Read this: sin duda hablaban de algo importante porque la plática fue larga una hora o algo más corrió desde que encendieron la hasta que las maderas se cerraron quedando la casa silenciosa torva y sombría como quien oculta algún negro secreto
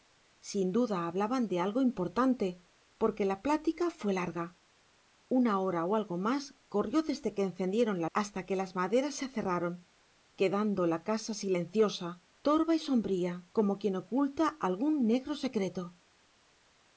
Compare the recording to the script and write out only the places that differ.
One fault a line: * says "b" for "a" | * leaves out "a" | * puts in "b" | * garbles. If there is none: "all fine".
all fine